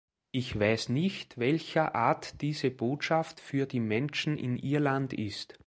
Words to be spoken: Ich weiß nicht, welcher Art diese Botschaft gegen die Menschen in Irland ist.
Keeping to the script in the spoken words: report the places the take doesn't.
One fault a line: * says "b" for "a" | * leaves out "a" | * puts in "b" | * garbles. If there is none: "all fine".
* says "für" for "gegen"